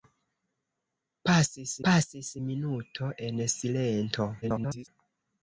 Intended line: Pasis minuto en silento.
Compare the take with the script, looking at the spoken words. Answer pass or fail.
fail